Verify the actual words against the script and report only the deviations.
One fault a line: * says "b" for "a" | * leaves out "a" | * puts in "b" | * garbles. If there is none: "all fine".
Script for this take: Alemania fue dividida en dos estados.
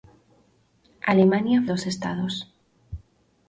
* leaves out "fue dividida en"